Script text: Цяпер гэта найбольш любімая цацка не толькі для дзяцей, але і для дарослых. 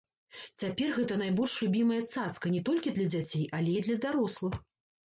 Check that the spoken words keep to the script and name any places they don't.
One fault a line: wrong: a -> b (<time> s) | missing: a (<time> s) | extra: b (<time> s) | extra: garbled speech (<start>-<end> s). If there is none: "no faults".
no faults